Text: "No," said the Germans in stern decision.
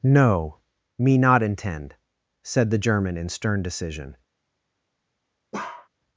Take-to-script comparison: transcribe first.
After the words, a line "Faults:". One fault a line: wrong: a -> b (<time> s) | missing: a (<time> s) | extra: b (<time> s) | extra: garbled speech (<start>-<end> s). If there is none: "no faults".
"No, me not intend," said the German in stern decision.
Faults:
extra: me not intend (1.0 s)
wrong: Germans -> German (2.8 s)